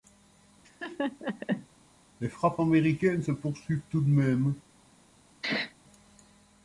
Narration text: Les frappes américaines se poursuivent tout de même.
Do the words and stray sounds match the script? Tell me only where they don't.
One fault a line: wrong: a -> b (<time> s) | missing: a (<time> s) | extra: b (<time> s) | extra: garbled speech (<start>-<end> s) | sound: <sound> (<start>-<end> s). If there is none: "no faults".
sound: laugh (0.6-1.7 s)
sound: sneeze (5.4-5.8 s)